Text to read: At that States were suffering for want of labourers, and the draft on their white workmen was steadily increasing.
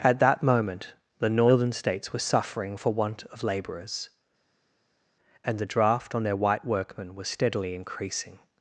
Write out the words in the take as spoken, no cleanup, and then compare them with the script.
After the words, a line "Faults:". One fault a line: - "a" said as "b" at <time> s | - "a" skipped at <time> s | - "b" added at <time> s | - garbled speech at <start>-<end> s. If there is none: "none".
At that moment the Northern States were suffering for want of labourers, and the draft on their white workmen was steadily increasing.
Faults:
- "moment the Northern" added at 0.4 s